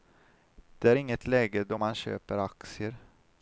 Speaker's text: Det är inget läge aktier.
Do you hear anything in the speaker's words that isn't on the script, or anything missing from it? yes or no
yes